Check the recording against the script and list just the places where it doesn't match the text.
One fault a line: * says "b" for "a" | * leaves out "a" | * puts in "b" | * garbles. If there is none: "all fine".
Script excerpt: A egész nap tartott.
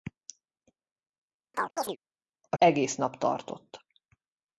all fine